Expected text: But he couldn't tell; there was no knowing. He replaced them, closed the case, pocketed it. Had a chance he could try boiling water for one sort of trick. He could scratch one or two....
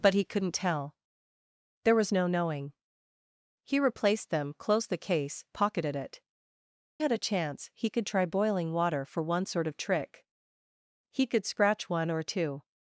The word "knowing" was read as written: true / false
true